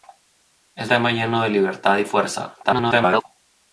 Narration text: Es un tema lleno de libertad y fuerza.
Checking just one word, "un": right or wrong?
wrong